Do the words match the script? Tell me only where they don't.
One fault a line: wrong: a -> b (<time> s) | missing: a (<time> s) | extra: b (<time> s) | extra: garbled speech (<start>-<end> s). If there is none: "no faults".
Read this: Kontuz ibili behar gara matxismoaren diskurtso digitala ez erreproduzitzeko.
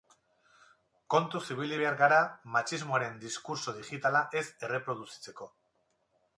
no faults